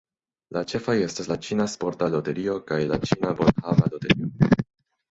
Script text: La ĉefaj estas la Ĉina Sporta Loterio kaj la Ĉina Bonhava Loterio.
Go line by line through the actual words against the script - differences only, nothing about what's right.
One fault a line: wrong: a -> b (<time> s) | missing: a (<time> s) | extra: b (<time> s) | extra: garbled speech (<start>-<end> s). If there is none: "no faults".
no faults